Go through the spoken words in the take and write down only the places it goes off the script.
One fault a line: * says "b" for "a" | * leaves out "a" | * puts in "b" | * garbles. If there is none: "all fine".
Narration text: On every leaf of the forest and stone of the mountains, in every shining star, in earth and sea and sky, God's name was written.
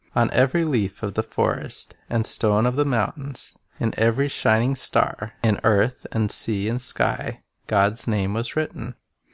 all fine